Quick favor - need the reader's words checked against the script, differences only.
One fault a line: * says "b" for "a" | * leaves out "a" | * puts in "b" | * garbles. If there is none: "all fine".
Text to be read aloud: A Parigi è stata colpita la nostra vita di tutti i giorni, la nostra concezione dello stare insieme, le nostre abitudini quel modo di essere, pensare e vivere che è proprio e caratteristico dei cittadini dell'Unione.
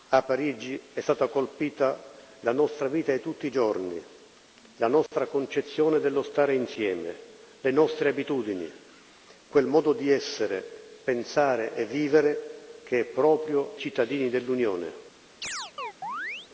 * leaves out "e caratteristico dei"